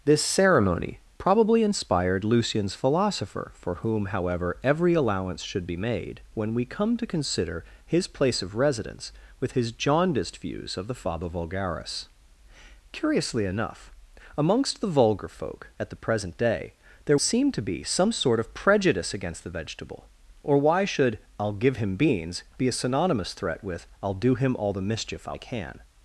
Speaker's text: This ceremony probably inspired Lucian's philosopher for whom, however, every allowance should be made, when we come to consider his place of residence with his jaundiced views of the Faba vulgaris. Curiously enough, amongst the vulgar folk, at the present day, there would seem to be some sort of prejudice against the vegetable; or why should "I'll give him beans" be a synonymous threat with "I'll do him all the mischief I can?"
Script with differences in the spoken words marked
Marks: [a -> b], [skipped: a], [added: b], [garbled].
This ceremony probably inspired Lucian's philosopher for whom, however, every allowance should be made, when we come to consider his place of residence with his jaundiced views of the Faba vulgaris. Curiously enough, amongst the vulgar folk, at the present day, there [skipped: would] seem to be some sort of prejudice against the vegetable; or why should "I'll give him beans" be a synonymous threat with "I'll do him all the mischief I can?"